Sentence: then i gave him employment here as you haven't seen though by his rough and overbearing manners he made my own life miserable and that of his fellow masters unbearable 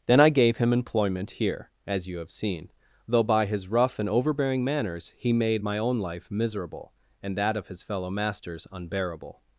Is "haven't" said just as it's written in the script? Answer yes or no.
no